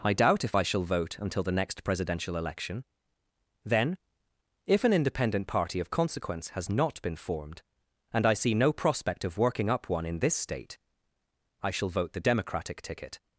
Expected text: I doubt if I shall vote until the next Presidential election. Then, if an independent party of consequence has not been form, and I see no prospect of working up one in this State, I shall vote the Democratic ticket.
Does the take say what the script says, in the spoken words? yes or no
no